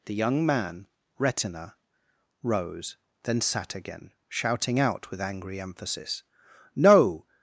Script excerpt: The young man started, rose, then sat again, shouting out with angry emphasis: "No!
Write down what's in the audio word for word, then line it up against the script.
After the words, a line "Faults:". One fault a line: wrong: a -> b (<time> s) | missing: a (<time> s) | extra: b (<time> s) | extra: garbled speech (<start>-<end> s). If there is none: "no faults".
The young man retina, rose, then sat again, shouting out with angry emphasis: "No!
Faults:
wrong: started -> retina (1.2 s)